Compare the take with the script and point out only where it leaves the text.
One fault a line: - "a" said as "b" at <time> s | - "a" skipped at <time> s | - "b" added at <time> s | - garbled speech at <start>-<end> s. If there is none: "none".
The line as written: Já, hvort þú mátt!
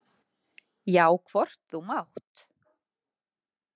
none